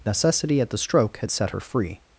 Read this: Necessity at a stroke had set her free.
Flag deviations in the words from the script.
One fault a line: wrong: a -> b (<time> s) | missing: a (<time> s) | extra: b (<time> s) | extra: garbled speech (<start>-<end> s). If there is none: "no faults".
wrong: a -> the (0.7 s)